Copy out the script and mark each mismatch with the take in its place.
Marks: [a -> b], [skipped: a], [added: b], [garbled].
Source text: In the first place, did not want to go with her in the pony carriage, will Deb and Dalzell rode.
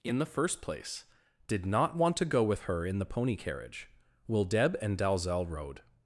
In the first place, did not want to go with her in the pony carriage, will Deb and Dalzell rode.